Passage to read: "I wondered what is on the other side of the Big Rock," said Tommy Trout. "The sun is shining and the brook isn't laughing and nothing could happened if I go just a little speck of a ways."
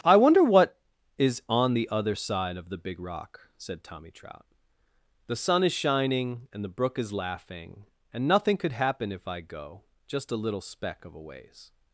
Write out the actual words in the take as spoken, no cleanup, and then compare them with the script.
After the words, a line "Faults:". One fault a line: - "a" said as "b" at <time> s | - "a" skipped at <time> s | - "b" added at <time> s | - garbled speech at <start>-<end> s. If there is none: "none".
"I wonder what is on the other side of the Big Rock," said Tommy Trout. "The sun is shining and the brook is laughing and nothing could happen if I go just a little speck of a ways."
Faults:
- "wondered" said as "wonder" at 0.1 s
- "isn't" said as "is" at 7.0 s
- "happened" said as "happen" at 8.7 s